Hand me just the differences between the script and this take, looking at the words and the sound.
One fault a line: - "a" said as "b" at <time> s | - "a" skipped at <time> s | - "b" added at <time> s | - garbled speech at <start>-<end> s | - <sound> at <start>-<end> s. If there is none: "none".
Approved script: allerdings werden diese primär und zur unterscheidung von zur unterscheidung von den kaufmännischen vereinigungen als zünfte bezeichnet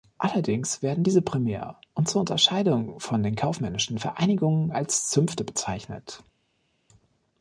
- "zur unterscheidung von" skipped at 3.2 s